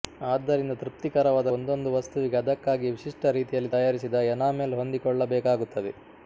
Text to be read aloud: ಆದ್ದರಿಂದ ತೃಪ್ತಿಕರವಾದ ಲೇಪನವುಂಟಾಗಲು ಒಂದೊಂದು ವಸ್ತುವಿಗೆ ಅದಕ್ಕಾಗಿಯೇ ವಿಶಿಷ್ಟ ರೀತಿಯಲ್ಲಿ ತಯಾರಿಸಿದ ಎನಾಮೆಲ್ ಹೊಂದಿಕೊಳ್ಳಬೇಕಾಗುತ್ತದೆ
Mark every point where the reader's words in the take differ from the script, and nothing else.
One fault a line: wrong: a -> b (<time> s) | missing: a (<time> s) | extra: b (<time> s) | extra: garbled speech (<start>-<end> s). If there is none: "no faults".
missing: ಲೇಪನವುಂಟಾಗಲು (1.5 s)